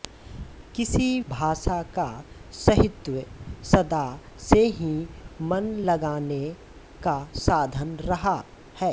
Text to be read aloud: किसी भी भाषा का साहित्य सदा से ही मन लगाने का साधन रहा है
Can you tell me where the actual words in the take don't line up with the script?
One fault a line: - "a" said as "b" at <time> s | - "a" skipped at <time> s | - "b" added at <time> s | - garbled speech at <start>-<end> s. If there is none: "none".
- "भी" skipped at 1.2 s